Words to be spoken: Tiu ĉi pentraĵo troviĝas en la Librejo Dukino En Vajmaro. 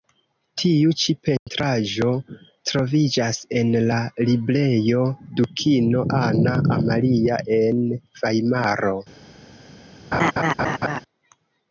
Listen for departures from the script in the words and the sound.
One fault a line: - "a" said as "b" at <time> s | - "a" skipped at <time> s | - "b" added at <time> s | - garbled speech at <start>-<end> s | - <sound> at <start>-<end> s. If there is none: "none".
- dropout at 1.4-1.5 s
- "Anna Amalia" added at 6.2 s
- laugh at 10.1-11.0 s